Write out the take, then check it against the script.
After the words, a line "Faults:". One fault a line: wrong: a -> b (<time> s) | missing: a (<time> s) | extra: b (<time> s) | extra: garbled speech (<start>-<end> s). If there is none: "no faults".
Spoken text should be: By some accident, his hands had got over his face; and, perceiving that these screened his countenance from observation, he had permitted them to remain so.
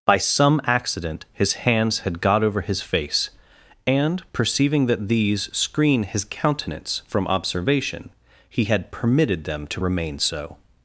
By some accident, his hands had got over his face; and, perceiving that these screen his countenance from observation, he had permitted them to remain so.
Faults:
wrong: screened -> screen (5.6 s)